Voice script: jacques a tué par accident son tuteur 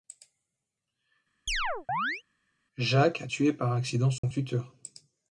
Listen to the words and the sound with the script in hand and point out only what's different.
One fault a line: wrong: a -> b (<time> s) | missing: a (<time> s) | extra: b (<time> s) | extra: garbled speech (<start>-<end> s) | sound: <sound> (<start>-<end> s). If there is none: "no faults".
sound: chirp (1.5-2.2 s)
sound: dropout (4.2-4.2 s)